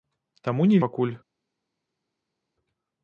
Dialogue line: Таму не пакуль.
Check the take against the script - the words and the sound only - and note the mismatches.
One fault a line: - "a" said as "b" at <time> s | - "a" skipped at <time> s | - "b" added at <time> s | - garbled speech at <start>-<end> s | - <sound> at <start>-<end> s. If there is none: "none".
none